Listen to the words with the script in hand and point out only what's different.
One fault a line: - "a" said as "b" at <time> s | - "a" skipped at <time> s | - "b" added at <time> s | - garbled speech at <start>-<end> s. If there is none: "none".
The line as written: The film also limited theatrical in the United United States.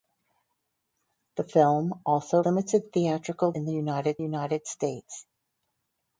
none